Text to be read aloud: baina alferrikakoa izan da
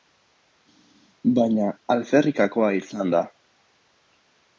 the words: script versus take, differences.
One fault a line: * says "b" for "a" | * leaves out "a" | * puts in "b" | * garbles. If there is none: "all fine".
all fine